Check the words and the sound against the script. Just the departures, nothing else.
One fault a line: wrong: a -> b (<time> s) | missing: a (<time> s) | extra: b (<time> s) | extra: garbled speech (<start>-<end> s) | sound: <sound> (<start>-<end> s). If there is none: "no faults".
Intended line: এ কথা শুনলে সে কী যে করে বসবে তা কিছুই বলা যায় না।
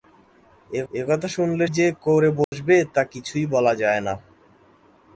extra: এ (0.9 s)
missing: সে কী (1.7 s)
sound: dropout (2.4-2.5 s)